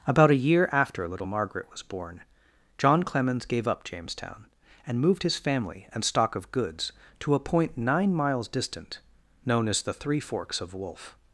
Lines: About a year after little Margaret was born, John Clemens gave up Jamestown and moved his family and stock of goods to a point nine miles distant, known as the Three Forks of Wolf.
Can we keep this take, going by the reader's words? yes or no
yes